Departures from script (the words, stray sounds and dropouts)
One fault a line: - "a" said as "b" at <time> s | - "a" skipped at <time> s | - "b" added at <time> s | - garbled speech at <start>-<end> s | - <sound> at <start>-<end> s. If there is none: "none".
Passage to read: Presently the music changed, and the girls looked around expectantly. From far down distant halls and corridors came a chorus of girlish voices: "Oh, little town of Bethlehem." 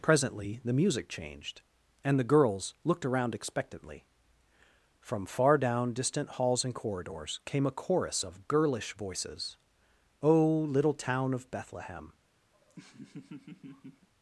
- laugh at 12.5-14.1 s